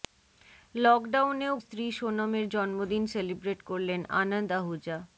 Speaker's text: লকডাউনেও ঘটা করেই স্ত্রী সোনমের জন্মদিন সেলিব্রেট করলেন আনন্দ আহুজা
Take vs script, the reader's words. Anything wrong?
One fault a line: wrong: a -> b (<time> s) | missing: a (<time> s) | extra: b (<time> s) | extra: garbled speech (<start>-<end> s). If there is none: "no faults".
missing: ঘটা করেই (1.5 s)